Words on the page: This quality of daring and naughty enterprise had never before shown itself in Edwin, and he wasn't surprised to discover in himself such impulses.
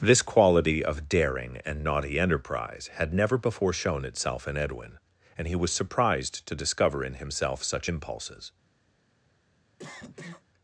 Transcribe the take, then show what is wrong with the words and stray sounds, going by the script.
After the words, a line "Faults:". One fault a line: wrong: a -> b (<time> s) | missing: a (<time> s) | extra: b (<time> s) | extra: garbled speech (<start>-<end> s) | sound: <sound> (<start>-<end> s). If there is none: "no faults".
This quality of daring and naughty enterprise had never before shown itself in Edwin, and he was surprised to discover in himself such impulses.
Faults:
wrong: wasn't -> was (5.6 s)
sound: cough (9.8-10.4 s)